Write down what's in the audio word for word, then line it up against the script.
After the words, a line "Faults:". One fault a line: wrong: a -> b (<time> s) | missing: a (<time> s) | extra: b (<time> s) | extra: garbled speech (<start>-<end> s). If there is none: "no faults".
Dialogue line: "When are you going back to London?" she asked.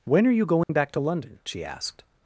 "When are you going back to London?" she asked.
Faults:
no faults